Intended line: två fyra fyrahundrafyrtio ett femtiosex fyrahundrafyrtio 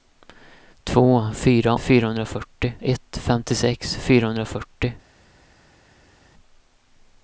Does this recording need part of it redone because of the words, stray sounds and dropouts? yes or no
no